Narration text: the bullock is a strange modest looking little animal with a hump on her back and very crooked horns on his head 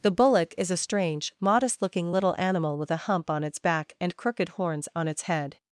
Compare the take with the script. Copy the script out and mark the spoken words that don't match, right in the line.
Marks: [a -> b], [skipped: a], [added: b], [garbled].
the bullock is a strange modest looking little animal with a hump on [her -> its] back and [skipped: very] crooked horns on [his -> its] head